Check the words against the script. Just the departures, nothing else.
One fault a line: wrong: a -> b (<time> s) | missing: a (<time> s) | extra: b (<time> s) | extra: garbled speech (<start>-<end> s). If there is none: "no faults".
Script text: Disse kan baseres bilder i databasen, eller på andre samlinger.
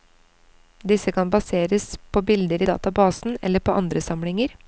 extra: på (2.1 s)